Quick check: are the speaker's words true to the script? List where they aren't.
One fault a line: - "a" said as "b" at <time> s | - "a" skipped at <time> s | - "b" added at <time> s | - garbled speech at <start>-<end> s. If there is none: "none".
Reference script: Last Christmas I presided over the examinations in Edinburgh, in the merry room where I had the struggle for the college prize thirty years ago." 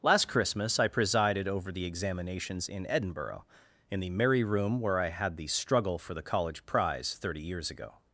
none